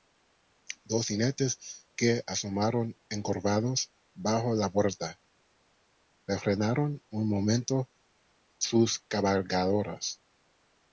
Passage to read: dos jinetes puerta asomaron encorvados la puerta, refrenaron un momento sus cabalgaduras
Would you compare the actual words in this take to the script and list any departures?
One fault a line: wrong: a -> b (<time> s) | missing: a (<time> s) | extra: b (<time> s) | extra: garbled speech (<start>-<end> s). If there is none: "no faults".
wrong: puerta -> que (1.9 s)
extra: bajo (4.2 s)